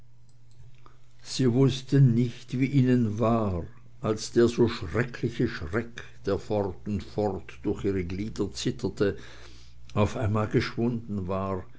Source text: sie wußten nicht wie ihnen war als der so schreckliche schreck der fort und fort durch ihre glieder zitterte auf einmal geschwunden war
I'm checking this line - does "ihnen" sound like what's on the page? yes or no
yes